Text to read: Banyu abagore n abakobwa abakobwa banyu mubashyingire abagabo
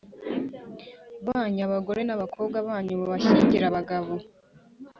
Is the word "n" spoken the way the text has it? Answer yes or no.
yes